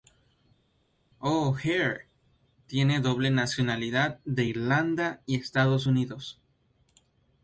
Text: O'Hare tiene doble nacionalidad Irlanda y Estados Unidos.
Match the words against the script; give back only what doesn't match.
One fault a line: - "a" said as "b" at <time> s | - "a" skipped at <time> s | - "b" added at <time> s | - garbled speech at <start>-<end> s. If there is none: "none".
- "de" added at 4.2 s